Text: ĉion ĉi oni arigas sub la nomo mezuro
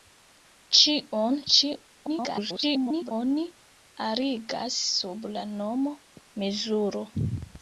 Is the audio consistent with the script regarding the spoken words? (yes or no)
no